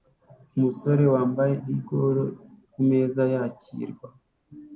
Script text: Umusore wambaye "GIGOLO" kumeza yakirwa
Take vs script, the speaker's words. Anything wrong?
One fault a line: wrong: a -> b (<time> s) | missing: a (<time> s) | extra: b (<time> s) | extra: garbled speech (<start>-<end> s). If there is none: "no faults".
no faults